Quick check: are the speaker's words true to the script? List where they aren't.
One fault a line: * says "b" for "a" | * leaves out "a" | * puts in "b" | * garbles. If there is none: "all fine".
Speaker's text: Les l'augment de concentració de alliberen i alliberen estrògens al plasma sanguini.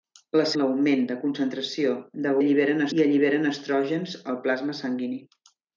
all fine